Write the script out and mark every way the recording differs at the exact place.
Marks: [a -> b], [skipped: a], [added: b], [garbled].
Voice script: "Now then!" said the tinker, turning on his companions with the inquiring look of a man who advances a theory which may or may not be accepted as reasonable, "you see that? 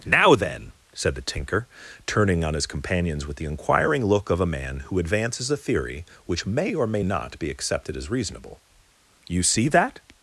"Now then!" said the tinker, turning on his companions with the inquiring look of a man who advances a theory which may or may not be accepted as reasonable, "you see that?